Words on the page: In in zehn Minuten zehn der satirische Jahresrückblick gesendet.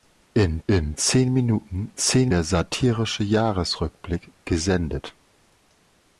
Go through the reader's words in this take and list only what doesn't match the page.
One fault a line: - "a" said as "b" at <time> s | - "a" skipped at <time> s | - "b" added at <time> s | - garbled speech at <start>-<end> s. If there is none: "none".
none